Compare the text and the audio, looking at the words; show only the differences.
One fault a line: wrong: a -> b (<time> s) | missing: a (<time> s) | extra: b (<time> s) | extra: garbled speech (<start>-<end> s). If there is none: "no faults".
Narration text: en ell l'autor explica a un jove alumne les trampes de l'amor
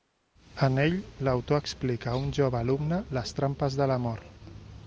no faults